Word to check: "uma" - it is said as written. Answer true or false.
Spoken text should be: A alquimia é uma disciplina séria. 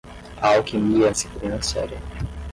false